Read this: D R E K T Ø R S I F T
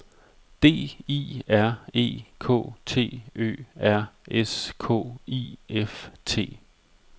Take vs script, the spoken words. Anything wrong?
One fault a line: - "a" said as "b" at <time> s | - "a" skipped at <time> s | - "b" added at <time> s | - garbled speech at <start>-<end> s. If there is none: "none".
- "I" added at 1.1 s
- "K" added at 4.8 s